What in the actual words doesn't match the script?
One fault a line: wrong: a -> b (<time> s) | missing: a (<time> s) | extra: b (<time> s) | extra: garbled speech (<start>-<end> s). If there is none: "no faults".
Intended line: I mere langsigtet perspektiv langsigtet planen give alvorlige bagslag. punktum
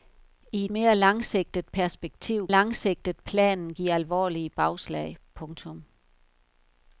no faults